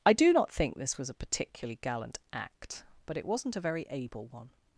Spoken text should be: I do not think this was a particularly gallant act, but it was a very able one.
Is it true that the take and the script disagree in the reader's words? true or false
true